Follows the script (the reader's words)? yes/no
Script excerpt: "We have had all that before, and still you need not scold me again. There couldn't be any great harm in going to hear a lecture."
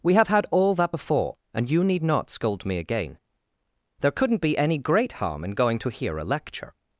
no